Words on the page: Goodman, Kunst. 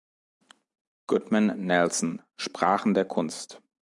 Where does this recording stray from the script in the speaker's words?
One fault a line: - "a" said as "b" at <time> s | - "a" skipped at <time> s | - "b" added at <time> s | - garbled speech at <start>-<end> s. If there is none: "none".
- "Nelson Sprachen der" added at 1.6 s